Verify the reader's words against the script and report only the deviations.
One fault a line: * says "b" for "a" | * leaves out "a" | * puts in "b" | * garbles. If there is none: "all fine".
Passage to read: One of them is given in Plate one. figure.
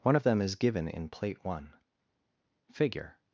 all fine